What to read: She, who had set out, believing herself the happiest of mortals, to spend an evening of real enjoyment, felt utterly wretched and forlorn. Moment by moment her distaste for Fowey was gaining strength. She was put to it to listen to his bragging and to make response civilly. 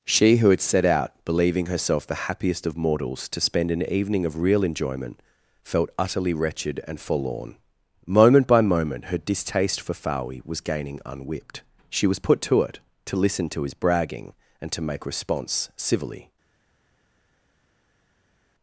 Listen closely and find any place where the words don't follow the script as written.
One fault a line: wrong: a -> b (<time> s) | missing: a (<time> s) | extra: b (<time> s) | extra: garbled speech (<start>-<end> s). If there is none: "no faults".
wrong: strength -> unwhipped (11.1 s)